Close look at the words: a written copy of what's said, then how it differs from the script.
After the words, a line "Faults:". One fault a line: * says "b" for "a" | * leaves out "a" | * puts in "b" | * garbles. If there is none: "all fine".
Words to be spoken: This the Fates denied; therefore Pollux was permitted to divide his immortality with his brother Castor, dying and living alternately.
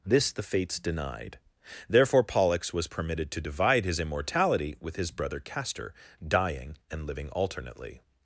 This the Fates denied; therefore Pollux was permitted to divide his immortality with his brother Castor, dying and living alternately.
Faults:
all fine